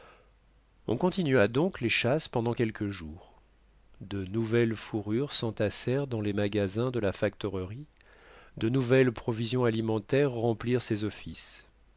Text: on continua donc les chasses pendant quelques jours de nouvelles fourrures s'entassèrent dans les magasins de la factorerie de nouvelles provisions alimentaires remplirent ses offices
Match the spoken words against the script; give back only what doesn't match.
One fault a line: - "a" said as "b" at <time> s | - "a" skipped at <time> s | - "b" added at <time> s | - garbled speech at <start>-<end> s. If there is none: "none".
none